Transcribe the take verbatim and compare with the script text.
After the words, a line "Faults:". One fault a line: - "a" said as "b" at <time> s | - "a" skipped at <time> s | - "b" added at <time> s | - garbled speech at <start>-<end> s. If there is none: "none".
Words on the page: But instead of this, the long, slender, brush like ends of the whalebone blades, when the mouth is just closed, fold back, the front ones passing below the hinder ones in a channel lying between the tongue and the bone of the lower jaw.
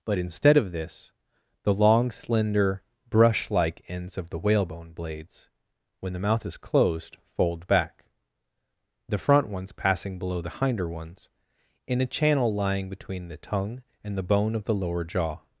But instead of this, the long, slender, brush like ends of the whalebone blades, when the mouth is closed, fold back, the front ones passing below the hinder ones in a channel lying between the tongue and the bone of the lower jaw.
Faults:
- "just" skipped at 6.6 s